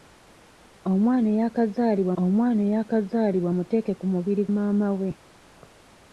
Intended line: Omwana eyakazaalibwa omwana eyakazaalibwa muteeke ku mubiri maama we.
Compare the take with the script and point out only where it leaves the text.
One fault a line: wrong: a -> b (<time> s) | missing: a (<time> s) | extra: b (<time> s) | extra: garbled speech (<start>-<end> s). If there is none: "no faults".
no faults